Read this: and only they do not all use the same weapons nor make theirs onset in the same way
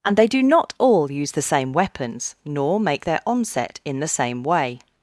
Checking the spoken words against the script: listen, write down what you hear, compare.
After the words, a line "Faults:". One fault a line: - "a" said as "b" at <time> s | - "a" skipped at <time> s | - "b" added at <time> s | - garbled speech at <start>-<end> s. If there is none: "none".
and they do not all use the same weapons nor make their onset in the same way
Faults:
- "only" skipped at 0.2 s
- "theirs" said as "their" at 3.0 s